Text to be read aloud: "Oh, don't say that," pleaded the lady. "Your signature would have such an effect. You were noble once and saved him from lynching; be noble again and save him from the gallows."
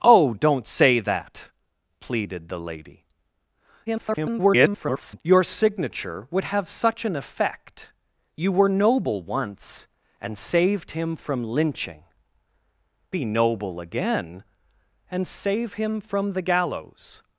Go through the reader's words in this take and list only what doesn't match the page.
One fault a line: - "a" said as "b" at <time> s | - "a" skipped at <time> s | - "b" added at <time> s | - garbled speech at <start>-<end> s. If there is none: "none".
- garbled speech at 3.9-5.2 s